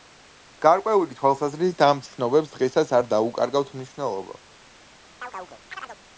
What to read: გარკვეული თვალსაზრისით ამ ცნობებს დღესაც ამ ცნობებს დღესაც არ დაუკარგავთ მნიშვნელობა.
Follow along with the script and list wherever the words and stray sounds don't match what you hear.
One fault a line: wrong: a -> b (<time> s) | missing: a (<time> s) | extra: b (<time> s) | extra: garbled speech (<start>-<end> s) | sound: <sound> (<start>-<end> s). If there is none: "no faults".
missing: ამ ცნობებს დღესაც (3.0 s)
sound: chirp (5.2-6.0 s)